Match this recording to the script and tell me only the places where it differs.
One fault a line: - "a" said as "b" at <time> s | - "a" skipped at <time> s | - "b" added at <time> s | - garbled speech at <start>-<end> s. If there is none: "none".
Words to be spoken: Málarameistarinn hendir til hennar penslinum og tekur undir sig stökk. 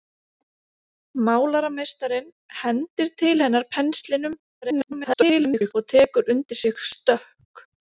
- garbled speech at 4.6-5.7 s